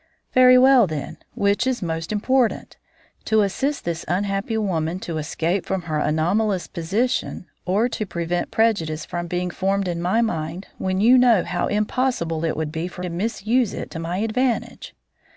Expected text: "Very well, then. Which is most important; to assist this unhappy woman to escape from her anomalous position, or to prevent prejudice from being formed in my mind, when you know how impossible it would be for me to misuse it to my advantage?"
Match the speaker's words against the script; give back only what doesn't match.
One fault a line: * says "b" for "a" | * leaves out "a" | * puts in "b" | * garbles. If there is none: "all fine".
* leaves out "me"